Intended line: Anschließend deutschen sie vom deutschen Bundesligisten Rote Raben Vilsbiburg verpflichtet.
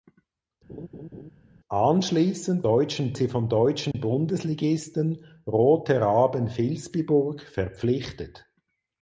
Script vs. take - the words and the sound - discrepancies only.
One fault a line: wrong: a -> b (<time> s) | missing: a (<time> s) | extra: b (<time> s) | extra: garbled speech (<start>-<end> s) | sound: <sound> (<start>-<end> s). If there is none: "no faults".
sound: laugh (0.7-1.3 s)
sound: dropout (3.9-3.9 s)